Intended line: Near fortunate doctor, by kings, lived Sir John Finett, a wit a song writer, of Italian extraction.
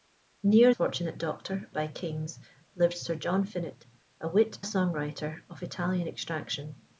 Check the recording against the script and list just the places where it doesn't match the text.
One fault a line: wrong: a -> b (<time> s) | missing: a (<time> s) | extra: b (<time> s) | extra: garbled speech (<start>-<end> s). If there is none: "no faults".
no faults